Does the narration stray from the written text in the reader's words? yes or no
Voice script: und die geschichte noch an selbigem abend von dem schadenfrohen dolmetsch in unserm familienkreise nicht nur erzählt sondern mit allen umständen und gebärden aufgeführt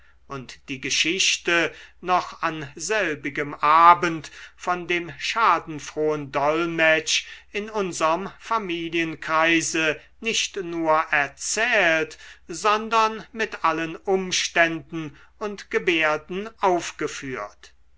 no